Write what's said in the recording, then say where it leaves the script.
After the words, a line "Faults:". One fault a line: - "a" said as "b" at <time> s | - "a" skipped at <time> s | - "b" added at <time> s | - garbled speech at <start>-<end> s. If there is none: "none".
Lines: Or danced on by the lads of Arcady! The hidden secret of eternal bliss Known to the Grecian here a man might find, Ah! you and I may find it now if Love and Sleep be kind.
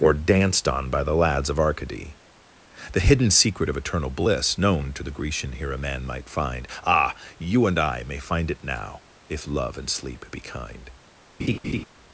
Or danced on by the lads of Arcady! The hidden secret of eternal bliss Known to the Grecian here a man might find, Ah! you and I may find it now if Love and Sleep be kind.
Faults:
none